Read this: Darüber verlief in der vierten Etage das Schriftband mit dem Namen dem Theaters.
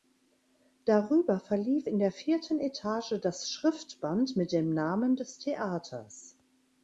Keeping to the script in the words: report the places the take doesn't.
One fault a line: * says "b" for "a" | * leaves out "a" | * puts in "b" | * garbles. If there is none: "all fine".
* says "des" for "dem"